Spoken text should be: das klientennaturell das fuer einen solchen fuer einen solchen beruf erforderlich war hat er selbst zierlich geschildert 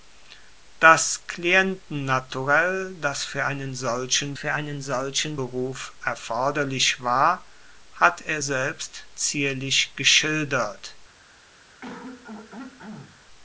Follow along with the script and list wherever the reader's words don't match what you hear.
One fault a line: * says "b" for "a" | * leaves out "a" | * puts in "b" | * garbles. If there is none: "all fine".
all fine